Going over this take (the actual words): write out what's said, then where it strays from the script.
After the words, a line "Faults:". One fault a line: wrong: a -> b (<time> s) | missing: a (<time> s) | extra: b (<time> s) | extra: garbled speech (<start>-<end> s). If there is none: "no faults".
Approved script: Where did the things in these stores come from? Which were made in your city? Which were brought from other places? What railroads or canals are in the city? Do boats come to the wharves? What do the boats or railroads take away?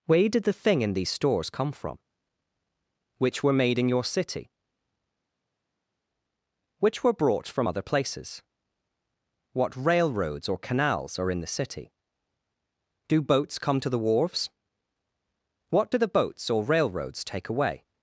Where did the thing in these stores come from? Which were made in your city? Which were brought from other places? What railroads or canals are in the city? Do boats come to the wharves? What do the boats or railroads take away?
Faults:
wrong: things -> thing (0.5 s)